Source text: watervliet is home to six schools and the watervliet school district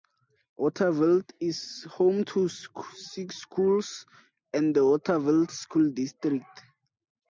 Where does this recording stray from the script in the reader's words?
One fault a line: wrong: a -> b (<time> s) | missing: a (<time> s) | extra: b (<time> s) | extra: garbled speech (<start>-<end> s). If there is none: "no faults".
no faults